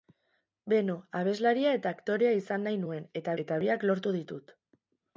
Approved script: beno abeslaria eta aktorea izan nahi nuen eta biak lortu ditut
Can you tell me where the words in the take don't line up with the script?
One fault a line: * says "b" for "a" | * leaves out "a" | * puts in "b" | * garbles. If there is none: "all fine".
* puts in "eta"